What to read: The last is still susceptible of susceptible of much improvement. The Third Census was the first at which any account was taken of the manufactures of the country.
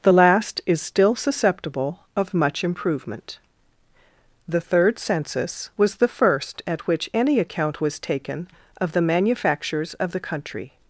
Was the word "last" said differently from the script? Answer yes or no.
no